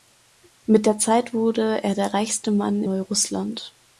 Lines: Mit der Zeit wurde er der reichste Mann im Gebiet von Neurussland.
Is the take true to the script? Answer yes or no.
no